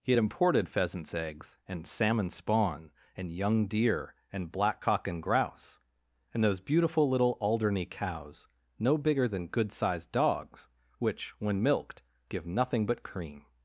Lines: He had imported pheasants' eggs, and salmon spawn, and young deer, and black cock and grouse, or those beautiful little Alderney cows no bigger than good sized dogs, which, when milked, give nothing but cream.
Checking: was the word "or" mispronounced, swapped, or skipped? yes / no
yes